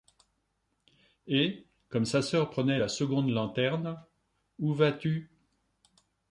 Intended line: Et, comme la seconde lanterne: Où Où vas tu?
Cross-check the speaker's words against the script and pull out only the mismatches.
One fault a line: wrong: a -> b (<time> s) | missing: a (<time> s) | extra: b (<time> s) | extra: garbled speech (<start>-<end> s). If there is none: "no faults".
extra: sa sœur prenait (2.0 s)
missing: Où (4.7 s)